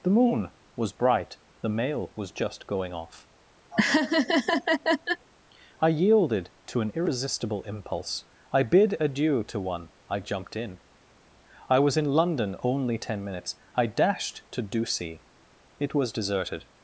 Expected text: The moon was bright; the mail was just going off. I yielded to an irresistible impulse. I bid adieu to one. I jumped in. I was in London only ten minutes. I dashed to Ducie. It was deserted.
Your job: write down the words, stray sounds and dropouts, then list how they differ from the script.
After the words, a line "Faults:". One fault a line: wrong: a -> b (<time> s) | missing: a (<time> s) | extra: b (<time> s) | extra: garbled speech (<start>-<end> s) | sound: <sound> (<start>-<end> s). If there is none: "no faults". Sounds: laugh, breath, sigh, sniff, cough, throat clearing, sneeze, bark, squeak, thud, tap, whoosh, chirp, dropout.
The moon was bright; the mail was just going off. I yielded to an irresistible impulse. I bid adieu to one. I jumped in. I was in London only ten minutes. I dashed to Ducie. It was deserted.
Faults:
sound: laugh (3.7-5.3 s)